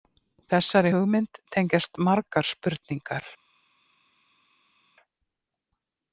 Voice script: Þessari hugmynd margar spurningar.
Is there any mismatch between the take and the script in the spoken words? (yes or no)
yes